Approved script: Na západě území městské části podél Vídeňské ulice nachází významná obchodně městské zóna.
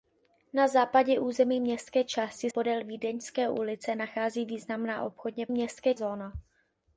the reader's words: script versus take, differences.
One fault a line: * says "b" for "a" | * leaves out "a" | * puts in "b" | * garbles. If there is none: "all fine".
all fine